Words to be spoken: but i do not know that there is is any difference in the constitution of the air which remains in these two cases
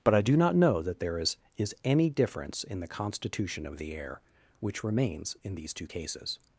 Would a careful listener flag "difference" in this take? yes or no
no